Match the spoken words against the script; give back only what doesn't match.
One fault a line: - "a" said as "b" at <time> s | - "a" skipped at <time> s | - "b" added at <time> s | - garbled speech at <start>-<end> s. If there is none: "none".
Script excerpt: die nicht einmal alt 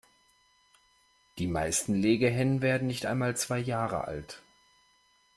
- "meisten legehennen werden" added at 1.4 s
- "zwei jahre" added at 3.4 s